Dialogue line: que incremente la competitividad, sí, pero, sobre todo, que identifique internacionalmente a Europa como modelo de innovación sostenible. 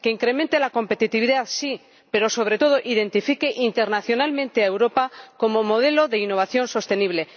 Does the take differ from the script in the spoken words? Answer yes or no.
no